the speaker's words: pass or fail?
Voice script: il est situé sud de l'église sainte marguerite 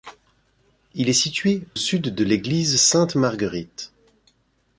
pass